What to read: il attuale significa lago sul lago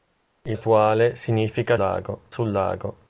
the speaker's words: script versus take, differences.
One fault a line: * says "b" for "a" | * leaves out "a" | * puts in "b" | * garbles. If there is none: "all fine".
all fine